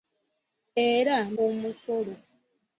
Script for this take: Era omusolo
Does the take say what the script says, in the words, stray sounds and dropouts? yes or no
yes